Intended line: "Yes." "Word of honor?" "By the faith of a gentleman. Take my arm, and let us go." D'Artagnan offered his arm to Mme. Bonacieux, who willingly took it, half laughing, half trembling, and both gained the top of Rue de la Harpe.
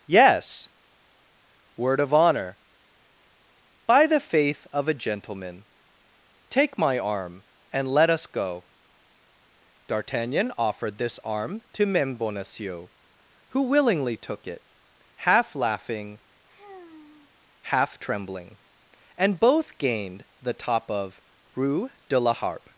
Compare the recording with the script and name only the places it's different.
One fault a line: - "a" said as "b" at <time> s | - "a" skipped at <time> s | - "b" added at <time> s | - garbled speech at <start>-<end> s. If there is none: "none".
- "his" said as "this" at 11.0 s